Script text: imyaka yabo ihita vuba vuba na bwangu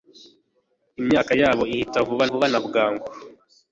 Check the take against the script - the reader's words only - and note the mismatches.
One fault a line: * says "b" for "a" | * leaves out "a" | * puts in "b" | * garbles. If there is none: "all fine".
all fine